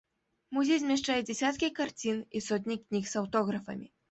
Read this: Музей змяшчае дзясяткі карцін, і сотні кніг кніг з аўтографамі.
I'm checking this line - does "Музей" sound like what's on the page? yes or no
yes